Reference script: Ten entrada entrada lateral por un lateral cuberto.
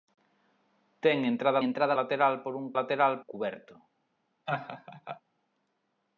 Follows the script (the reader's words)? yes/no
yes